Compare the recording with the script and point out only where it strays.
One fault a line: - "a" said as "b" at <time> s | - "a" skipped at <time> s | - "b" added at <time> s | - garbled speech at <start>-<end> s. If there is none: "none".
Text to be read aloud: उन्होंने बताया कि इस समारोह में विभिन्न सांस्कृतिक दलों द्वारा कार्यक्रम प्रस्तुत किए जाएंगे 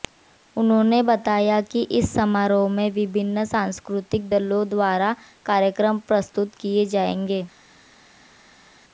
none